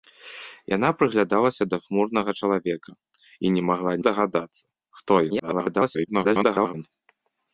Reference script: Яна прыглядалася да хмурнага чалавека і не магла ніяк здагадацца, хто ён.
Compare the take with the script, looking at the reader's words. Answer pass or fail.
fail